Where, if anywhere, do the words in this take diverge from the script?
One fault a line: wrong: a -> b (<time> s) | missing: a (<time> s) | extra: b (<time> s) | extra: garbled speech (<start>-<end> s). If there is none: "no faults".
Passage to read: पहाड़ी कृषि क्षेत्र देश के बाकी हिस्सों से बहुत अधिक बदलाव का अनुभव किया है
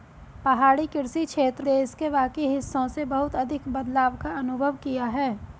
no faults